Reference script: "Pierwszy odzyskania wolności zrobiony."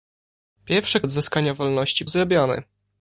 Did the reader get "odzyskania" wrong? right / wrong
right